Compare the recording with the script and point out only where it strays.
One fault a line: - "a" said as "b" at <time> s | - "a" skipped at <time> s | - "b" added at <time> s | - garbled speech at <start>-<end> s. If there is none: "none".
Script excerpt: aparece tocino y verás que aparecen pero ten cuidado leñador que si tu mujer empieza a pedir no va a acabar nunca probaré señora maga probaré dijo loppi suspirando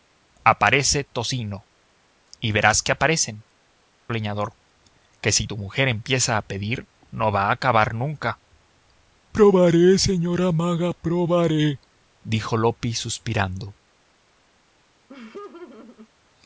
- "pero ten cuidado" skipped at 3.4 s